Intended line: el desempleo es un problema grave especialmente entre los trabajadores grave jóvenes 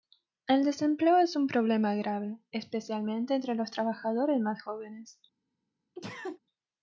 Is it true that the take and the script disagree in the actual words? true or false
true